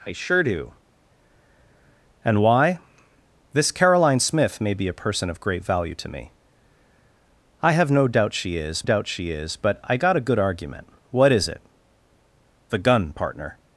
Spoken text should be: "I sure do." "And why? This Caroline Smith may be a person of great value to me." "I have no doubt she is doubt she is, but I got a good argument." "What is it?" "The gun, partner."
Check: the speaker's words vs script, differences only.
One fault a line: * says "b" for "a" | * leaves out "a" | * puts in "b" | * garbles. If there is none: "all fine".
all fine